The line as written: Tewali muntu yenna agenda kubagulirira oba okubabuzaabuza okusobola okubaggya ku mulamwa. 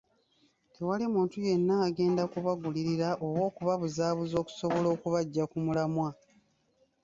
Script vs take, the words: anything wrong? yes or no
no